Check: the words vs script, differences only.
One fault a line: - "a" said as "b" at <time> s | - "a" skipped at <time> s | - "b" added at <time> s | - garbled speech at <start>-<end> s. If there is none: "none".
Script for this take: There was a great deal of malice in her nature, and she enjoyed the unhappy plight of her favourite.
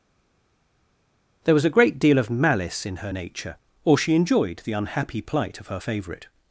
- "and" said as "or" at 3.8 s